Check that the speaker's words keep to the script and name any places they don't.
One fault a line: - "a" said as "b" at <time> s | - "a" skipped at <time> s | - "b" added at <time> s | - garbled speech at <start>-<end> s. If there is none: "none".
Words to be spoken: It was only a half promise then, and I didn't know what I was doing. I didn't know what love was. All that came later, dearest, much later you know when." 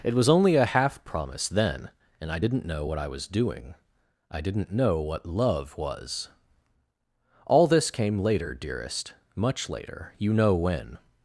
- "that" said as "this" at 7.7 s